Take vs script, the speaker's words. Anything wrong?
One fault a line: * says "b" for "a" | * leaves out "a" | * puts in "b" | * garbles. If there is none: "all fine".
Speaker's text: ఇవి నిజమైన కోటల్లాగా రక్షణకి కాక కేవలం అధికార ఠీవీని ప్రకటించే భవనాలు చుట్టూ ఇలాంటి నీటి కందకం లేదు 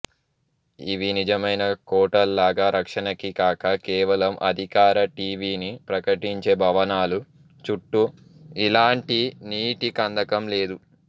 all fine